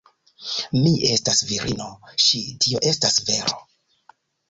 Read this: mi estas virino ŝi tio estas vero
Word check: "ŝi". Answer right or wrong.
right